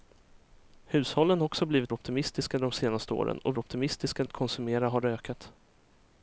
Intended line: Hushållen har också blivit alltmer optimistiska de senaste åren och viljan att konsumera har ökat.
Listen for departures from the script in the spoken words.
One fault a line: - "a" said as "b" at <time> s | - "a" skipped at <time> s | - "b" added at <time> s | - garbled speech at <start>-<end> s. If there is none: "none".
- "alltmer" skipped at 1.9 s
- "viljan" said as "optimistiska" at 3.6 s